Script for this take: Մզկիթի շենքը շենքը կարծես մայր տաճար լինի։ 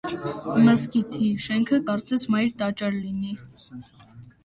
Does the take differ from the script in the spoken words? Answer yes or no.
yes